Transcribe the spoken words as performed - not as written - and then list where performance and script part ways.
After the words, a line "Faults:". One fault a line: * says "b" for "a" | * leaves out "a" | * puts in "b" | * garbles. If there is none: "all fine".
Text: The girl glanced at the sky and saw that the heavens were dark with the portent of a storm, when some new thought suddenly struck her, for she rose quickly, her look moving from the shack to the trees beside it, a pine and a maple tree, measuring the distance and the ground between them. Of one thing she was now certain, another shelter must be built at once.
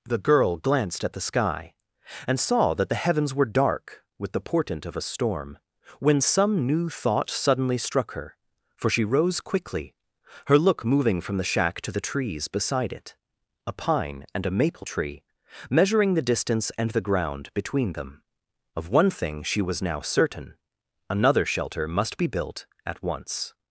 The girl glanced at the sky and saw that the heavens were dark with the portent of a storm, when some new thought suddenly struck her, for she rose quickly, her look moving from the shack to the trees beside it, a pine and a maple tree, measuring the distance and the ground between them. Of one thing she was now certain, another shelter must be built at once.
Faults:
all fine